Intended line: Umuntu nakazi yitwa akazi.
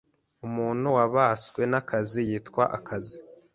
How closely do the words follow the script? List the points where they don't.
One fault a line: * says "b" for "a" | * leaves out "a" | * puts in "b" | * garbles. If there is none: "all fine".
* puts in "wabaswe"